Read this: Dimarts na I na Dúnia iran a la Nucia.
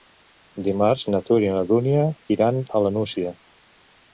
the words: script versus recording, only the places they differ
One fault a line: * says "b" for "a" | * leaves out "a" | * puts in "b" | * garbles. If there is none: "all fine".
* puts in "Tura"